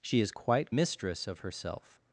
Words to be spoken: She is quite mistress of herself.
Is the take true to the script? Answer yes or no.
yes